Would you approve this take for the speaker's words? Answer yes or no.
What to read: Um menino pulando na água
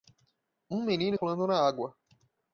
yes